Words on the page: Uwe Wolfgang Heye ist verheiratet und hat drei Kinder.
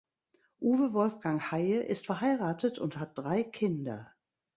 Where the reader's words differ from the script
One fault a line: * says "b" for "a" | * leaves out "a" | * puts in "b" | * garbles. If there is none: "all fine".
all fine